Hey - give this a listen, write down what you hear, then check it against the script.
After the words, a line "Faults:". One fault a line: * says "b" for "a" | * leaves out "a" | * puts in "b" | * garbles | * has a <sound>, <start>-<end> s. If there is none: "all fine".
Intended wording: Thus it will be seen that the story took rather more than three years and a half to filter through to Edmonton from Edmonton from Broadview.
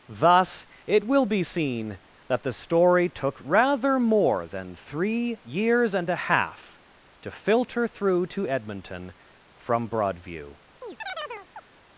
Thus it will be seen that the story took rather more than three years and a half to filter through to Edmonton from Broadview.
Faults:
* leaves out "Edmonton from"
* has a chirp, 10.8-11.7 s